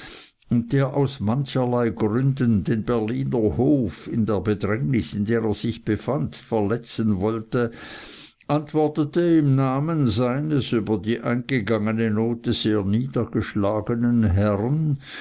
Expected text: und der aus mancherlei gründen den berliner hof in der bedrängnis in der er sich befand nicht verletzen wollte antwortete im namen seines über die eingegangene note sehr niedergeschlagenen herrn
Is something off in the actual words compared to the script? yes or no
yes